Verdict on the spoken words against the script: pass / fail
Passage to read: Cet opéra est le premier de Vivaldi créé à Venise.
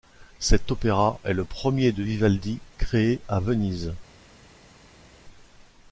pass